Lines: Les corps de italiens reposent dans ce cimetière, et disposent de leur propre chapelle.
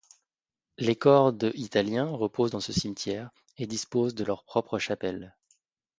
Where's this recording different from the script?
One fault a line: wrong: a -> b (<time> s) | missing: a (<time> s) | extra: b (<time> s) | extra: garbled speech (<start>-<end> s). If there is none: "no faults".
no faults